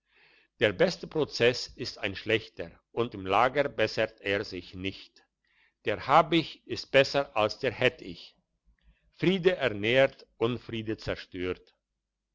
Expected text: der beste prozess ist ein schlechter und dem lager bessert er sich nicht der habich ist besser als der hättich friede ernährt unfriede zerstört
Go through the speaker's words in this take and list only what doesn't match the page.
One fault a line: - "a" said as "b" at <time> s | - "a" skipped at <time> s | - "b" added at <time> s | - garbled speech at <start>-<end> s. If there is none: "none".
none